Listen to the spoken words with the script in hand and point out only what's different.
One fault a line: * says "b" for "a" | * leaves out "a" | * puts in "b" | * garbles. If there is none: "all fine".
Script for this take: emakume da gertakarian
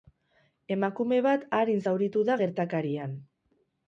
* puts in "bat arin zauritu"